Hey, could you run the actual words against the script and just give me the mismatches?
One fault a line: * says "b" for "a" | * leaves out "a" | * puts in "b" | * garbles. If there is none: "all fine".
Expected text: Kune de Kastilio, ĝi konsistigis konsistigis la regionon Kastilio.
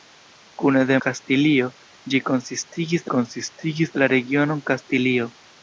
all fine